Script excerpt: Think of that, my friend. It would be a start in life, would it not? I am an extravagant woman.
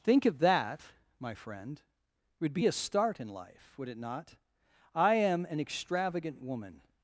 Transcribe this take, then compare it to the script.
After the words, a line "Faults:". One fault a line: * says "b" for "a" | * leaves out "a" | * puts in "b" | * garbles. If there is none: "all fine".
Think of that, my friend. It would be a start in life, would it not? I am an extravagant woman.
Faults:
all fine